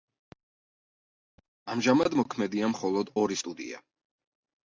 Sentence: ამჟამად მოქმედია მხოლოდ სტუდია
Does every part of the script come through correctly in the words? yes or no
no